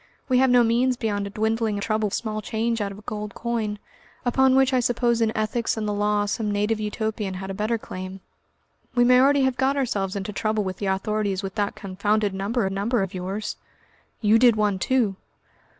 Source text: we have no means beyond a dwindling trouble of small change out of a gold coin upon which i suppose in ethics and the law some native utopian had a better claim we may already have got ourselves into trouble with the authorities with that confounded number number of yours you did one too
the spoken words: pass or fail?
pass